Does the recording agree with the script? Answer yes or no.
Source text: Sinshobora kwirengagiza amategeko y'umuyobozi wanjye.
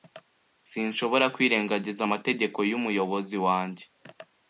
yes